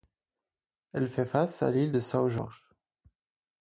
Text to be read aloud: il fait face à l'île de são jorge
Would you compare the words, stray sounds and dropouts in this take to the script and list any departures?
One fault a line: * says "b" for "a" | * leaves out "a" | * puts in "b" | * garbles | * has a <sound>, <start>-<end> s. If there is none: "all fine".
* says "elle" for "il"